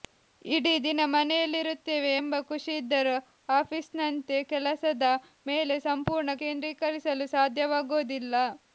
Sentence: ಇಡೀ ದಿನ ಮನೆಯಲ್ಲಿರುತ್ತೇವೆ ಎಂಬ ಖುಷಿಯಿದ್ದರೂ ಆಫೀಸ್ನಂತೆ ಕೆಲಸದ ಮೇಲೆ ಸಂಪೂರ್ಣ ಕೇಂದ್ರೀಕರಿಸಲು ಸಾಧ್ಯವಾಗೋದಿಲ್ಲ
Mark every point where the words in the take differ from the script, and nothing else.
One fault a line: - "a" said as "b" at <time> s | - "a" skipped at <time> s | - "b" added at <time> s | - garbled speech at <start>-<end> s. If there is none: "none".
none